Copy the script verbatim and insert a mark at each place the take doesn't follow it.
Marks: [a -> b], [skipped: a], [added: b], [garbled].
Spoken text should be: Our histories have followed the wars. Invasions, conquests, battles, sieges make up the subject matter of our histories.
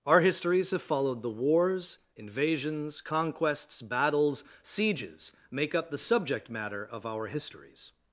Our histories have followed the wars. Invasions, conquests, battles, sieges make up the subject matter of our histories.